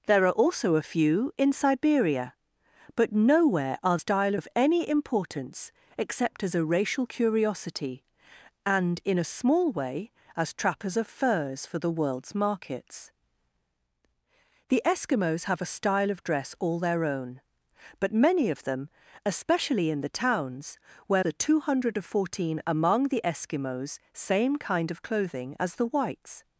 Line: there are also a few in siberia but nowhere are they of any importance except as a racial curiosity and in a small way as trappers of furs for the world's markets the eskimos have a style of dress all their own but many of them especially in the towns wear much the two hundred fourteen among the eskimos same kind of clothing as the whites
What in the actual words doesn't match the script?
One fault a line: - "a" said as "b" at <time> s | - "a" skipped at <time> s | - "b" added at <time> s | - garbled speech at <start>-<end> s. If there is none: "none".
- "they" said as "style" at 4.0 s
- "much" skipped at 21.2 s